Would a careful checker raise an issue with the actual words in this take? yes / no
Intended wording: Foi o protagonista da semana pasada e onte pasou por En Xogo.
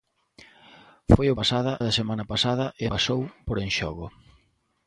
yes